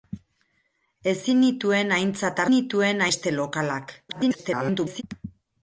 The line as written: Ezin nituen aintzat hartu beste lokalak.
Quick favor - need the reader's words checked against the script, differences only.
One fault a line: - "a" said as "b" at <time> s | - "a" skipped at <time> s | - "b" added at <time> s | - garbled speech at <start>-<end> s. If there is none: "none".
- "hartu" said as "nituen" at 2.5 s
- garbled speech at 4.1-5.0 s